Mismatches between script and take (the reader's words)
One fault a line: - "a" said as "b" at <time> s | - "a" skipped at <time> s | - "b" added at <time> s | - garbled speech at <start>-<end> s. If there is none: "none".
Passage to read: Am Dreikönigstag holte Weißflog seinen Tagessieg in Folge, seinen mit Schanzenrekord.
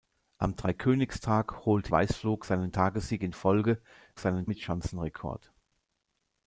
none